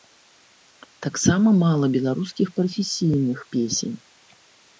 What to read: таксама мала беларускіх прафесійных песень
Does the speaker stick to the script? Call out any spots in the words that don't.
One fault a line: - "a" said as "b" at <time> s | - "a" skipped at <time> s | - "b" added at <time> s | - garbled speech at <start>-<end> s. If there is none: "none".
none